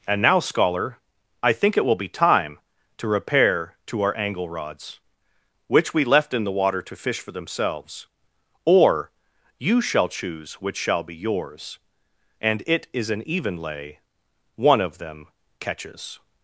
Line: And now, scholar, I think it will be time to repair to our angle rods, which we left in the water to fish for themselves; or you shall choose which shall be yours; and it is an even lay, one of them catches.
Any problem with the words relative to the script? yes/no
no